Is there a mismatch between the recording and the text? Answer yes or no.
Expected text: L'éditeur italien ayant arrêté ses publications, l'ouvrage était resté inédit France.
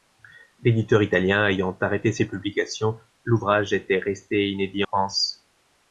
no